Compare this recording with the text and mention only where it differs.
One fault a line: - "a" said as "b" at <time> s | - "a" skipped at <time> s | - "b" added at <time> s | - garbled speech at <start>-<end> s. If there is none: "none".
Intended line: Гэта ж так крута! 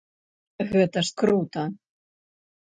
- "так" skipped at 1.1 s